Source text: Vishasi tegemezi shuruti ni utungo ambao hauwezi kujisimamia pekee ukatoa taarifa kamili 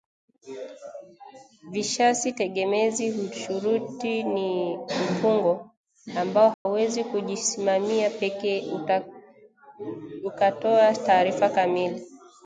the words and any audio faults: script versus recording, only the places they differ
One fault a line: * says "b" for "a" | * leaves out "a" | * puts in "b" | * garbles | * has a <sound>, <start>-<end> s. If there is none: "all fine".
* has a dropout, 6.5-6.7 s